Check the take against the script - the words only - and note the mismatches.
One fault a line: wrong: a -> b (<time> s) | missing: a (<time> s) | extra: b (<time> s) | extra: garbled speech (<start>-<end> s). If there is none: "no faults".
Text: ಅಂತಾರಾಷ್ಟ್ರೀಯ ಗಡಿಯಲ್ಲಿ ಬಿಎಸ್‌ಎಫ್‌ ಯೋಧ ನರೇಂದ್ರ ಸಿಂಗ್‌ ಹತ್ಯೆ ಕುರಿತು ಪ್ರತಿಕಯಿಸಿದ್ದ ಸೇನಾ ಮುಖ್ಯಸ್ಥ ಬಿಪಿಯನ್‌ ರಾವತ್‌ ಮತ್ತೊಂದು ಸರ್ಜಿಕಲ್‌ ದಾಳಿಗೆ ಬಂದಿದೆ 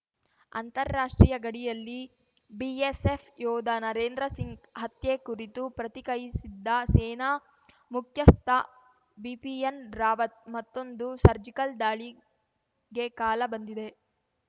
extra: ಕಾಲ (13.2 s)